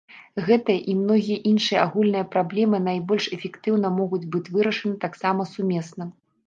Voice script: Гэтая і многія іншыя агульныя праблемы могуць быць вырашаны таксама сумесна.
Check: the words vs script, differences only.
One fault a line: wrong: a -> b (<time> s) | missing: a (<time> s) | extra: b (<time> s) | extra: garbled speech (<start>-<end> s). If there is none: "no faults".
extra: найбольш эфектыўна (2.9 s)